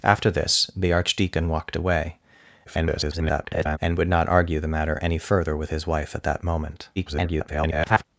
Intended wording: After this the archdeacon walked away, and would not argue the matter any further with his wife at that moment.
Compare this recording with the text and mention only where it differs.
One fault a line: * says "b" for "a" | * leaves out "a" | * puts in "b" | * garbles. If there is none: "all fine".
* garbles
* garbles